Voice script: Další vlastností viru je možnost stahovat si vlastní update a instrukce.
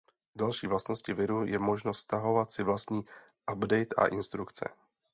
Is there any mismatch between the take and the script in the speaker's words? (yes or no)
no